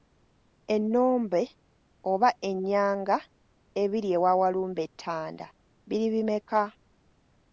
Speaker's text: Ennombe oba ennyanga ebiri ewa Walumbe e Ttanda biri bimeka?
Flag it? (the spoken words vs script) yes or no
no